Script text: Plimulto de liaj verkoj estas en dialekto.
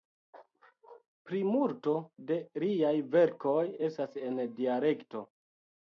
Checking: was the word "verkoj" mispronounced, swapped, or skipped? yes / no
no